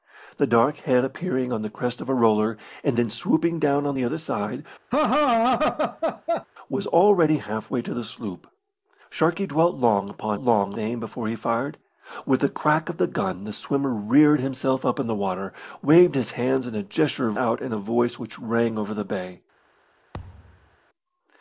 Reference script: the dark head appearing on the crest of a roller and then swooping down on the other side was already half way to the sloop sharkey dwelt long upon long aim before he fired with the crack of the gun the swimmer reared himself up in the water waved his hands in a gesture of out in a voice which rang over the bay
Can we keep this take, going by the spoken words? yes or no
yes